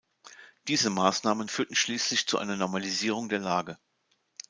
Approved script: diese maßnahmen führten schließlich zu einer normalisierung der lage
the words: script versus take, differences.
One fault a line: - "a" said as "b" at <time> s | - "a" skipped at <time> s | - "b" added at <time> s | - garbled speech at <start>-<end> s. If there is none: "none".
none